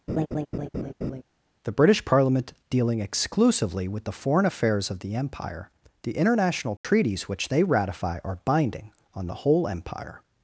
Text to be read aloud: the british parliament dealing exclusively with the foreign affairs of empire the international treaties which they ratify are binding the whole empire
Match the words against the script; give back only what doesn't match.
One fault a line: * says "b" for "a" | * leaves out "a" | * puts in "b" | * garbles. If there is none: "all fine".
* puts in "the"
* puts in "on"